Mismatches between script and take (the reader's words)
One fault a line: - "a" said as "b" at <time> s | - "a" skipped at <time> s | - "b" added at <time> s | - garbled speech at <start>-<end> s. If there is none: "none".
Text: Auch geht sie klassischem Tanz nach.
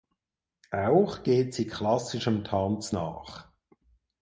none